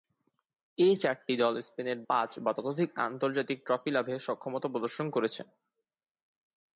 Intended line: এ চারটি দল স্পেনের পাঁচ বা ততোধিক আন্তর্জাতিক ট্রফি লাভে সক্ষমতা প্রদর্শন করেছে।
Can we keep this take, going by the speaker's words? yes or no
yes